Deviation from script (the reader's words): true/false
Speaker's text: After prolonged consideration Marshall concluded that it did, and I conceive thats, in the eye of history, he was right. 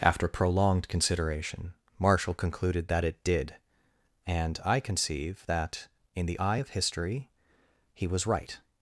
true